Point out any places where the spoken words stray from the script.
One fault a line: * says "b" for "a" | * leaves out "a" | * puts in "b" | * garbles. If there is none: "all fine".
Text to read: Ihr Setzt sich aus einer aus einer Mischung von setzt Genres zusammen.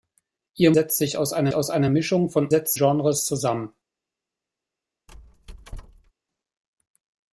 all fine